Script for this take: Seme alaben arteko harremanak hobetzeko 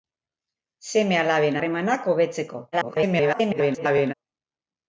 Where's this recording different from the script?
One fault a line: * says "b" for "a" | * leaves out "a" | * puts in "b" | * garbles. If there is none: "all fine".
* leaves out "arteko"
* garbles